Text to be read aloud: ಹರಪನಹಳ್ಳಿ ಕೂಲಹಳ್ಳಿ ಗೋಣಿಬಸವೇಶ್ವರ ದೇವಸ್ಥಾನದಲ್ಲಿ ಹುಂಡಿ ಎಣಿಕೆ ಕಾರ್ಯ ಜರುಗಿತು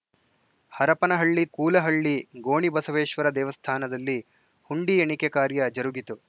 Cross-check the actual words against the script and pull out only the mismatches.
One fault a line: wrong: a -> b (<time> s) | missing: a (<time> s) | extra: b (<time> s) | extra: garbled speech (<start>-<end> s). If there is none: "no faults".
no faults